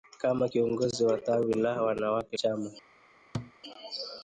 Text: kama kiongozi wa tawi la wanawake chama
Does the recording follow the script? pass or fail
pass